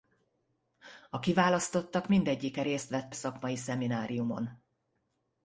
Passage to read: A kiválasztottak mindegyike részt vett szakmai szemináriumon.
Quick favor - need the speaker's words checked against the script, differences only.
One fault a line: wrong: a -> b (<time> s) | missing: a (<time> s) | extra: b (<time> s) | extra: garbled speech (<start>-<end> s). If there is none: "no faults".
no faults